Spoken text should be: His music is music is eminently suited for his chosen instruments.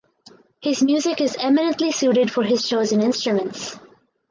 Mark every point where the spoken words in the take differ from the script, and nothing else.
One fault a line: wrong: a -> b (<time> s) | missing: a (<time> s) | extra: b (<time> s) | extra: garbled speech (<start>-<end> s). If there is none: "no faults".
missing: music is (1.4 s)